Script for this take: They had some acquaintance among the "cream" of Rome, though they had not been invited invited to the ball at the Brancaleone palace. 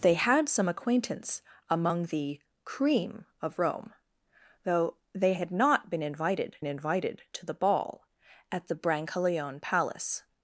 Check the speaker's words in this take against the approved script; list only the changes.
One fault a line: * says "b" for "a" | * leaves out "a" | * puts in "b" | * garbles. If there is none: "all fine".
all fine